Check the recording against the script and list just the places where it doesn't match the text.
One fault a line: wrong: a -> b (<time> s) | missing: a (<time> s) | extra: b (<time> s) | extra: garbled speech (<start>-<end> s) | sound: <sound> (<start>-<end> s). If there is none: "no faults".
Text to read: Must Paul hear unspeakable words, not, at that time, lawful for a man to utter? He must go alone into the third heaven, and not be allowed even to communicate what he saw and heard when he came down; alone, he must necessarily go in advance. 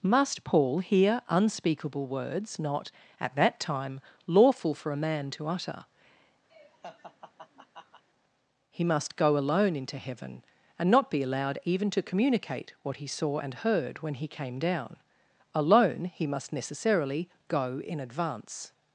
sound: laugh (6.5-8.0 s)
missing: the third (10.0 s)